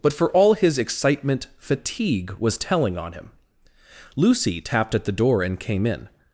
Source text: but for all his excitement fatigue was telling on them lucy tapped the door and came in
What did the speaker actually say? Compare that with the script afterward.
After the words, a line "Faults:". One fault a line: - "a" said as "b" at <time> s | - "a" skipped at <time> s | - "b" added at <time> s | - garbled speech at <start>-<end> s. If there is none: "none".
but for all his excitement fatigue was telling on him lucy tapped at the door and came in
Faults:
- "them" said as "him" at 3.1 s
- "at" added at 4.9 s